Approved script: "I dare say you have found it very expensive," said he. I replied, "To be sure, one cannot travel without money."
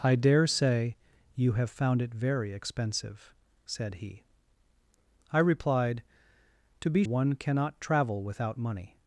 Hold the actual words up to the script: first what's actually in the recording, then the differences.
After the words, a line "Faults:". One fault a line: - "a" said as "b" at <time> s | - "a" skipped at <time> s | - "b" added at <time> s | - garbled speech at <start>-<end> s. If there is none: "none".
"I dare say you have found it very expensive," said he. I replied, "To be one cannot travel without money."
Faults:
- "sure" skipped at 7.0 s